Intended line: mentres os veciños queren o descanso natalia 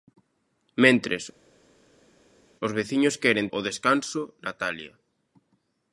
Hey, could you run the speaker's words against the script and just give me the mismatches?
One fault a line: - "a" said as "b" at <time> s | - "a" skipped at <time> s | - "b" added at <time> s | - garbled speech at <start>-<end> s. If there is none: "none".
none